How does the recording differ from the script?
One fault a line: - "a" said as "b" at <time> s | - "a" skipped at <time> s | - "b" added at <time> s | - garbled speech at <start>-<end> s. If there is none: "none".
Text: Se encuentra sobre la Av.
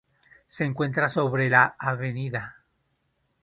none